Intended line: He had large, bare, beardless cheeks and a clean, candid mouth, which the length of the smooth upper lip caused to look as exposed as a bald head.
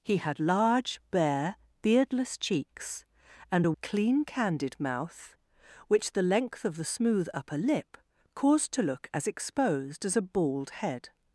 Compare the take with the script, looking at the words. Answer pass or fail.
pass